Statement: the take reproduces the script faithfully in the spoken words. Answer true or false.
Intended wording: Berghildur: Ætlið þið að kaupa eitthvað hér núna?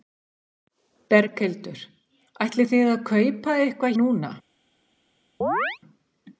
false